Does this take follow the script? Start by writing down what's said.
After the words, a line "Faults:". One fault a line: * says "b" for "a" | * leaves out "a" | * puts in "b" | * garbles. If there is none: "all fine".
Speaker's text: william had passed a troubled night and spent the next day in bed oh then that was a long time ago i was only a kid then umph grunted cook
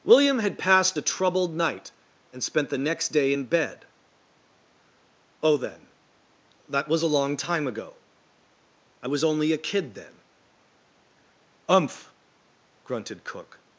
william had passed a troubled night and spent the next day in bed oh then that was a long time ago i was only a kid then umph grunted cook
Faults:
all fine